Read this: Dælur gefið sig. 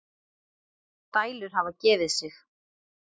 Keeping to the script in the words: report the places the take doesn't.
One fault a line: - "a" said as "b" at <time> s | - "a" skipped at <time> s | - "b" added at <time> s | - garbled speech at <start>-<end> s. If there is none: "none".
- "hafa" added at 1.5 s